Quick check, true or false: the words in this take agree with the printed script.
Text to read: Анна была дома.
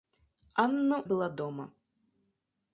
true